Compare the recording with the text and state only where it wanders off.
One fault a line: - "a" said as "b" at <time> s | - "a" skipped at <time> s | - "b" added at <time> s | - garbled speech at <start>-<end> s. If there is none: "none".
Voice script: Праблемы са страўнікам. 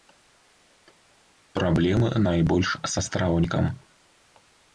- "найбольш" added at 2.3 s